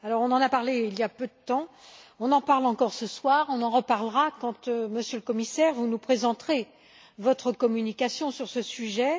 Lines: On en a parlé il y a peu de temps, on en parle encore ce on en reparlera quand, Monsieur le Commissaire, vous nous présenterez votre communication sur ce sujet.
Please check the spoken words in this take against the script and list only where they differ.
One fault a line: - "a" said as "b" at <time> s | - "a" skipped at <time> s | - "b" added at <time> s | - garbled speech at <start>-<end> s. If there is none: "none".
- "soir" added at 3.1 s